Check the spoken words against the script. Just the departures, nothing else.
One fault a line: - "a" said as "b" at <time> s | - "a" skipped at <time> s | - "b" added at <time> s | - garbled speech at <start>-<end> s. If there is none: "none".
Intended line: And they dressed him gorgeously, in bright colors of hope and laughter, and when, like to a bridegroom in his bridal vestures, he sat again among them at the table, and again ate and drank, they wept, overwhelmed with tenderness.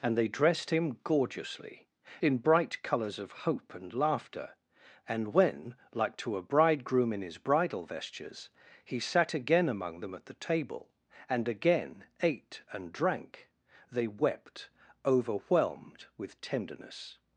none